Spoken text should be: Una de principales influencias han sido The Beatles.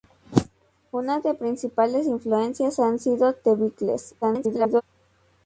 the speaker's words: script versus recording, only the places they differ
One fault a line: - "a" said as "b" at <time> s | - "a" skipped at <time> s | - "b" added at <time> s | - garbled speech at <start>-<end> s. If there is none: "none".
- garbled speech at 4.2-4.8 s